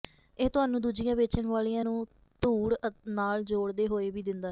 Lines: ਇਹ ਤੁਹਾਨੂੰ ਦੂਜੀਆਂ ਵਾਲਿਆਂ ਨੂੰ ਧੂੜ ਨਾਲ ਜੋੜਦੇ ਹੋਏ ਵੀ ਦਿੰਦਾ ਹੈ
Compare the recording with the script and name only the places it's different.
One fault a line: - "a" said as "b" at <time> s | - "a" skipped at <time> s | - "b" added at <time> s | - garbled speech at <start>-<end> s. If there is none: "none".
- "ਵੇਚਣ" added at 1.1 s